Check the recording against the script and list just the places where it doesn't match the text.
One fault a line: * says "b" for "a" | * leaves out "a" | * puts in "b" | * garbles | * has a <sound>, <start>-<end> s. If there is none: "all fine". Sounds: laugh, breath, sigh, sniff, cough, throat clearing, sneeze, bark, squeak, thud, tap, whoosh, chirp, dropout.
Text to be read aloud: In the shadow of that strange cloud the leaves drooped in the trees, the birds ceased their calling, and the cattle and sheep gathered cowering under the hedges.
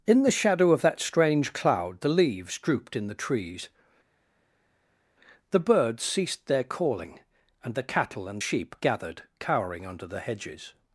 all fine